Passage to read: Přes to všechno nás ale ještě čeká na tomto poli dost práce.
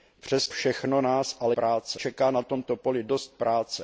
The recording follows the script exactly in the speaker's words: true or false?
false